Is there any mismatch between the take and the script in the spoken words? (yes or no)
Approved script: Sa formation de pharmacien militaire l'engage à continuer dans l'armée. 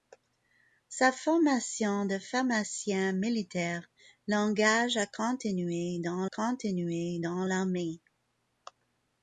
yes